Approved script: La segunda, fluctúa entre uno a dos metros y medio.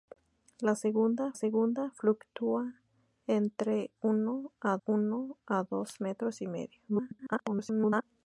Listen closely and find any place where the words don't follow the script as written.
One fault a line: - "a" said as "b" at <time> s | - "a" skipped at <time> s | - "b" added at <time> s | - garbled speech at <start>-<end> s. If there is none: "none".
- "segunda" added at 1.3 s
- "uno a" added at 4.8 s
- garbled speech at 6.9-8.0 s